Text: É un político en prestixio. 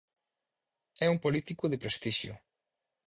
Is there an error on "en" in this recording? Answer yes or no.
yes